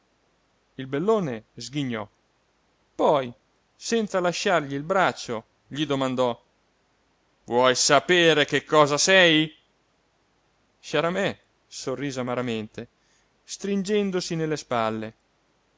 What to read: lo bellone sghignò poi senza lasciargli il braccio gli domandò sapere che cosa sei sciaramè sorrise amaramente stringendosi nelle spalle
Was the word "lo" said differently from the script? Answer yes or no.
yes